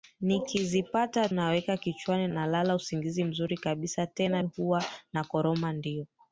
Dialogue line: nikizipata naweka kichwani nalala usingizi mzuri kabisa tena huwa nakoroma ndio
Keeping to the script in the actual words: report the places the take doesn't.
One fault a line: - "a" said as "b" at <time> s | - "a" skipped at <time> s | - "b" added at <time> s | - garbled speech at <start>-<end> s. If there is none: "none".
none